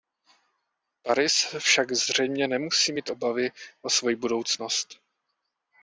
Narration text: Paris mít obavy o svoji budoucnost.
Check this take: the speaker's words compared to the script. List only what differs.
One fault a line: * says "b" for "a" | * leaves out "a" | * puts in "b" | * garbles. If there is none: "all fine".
* puts in "však zřejmě nemusí"